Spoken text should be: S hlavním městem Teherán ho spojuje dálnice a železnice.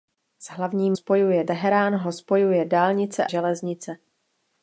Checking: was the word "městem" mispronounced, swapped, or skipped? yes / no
yes